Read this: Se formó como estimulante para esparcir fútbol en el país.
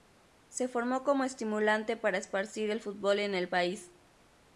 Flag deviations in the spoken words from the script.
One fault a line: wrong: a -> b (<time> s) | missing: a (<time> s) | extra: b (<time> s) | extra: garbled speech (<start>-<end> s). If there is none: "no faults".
extra: el (2.7 s)